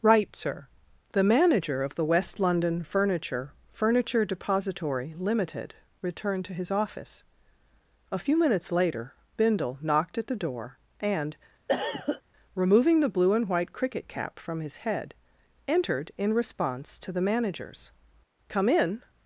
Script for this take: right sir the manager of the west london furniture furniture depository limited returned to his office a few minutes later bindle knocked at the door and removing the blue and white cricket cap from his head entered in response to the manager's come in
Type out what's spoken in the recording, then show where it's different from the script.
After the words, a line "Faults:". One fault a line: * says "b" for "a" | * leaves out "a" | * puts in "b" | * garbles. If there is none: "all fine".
right sir the manager of the west london furniture furniture depository limited returned to his office a few minutes later bindle knocked at the door and removing the blue and white cricket cap from his head entered in response to the manager's come in
Faults:
all fine